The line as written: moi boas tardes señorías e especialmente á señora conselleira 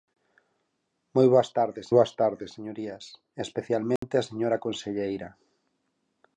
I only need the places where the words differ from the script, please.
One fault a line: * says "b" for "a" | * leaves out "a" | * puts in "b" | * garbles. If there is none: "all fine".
* puts in "boas tardes"